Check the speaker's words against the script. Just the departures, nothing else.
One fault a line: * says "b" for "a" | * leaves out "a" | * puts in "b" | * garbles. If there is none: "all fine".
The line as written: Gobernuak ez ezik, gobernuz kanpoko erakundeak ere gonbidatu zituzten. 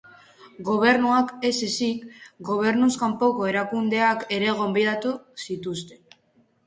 all fine